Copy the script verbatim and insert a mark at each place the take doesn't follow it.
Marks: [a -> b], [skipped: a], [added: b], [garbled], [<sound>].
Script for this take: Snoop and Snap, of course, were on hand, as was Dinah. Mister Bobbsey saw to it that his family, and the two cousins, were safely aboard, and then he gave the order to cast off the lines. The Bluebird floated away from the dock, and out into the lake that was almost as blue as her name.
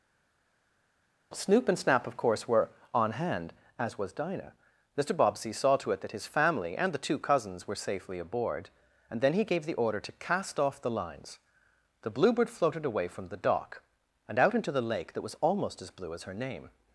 Snoop and Snap, of course, were on hand, as was Dinah. Mister Bobbsey saw to it that his family, and the two cousins, were safely aboard, and then he gave the order to cast off the lines. The Bluebird floated away from the dock, and out into the lake that was almost as blue as her name.